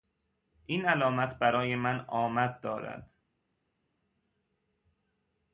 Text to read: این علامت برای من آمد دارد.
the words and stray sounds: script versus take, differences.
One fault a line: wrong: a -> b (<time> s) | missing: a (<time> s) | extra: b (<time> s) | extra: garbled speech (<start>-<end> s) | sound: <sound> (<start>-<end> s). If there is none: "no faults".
no faults